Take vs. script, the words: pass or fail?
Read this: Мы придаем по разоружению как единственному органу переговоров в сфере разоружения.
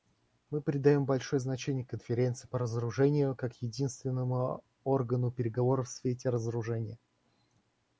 fail